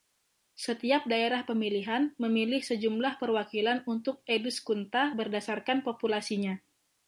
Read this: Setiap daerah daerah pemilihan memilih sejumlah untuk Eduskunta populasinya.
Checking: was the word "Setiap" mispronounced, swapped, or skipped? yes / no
no